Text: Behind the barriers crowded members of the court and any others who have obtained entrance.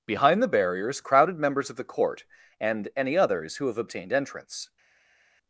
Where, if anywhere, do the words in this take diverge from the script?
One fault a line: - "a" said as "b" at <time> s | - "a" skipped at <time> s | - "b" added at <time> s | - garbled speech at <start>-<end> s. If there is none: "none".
none